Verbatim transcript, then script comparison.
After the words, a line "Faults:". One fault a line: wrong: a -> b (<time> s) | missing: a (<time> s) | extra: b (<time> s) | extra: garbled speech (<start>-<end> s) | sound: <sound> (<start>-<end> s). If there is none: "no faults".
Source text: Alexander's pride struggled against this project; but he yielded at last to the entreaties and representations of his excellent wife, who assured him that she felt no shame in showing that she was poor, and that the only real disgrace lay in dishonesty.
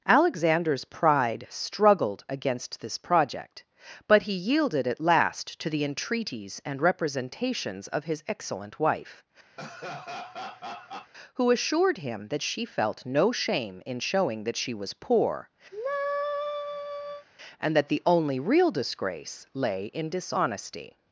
Alexander's pride struggled against this project; but he yielded at last to the entreaties and representations of his excellent wife, who assured him that she felt no shame in showing that she was poor, and that the only real disgrace lay in dishonesty.
Faults:
sound: laugh (9.6-11.1 s)
sound: sigh (15.7-17.3 s)